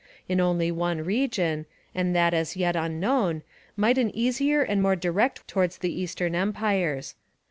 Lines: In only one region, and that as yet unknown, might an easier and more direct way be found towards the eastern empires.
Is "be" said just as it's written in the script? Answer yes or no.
no